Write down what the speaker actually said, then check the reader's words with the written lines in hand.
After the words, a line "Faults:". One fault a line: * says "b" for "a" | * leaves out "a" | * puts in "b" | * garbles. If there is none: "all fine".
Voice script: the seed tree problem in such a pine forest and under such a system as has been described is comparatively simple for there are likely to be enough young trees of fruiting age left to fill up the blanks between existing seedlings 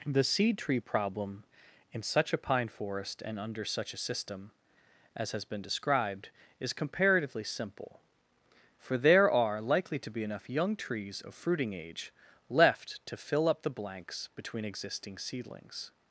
the seed tree problem in such a pine forest and under such a system as has been described is comparatively simple for there are likely to be enough young trees of fruiting age left to fill up the blanks between existing seedlings
Faults:
all fine